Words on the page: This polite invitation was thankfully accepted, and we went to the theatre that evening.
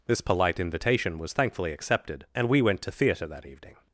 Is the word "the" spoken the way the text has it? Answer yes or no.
no